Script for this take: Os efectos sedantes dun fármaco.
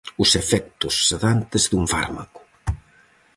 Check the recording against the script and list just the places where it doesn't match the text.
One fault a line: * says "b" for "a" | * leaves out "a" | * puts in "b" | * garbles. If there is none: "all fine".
all fine